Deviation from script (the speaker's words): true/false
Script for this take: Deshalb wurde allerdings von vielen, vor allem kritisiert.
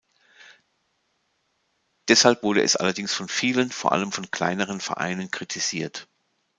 true